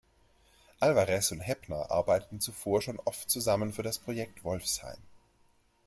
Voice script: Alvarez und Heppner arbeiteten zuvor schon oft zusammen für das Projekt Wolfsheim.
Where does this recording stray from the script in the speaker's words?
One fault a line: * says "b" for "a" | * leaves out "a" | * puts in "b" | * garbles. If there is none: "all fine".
all fine